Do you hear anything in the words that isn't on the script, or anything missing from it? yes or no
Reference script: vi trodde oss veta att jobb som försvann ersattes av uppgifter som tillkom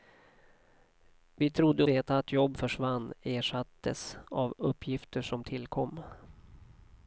yes